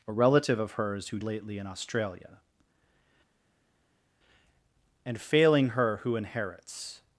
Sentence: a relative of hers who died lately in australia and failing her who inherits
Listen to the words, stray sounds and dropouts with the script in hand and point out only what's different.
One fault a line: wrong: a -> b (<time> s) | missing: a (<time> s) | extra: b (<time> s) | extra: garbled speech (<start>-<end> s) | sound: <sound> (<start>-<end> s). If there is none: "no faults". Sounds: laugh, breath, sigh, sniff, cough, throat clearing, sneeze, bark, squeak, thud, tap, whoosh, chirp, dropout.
missing: died (1.2 s)